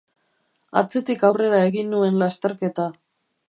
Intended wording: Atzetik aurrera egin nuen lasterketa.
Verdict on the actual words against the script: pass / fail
pass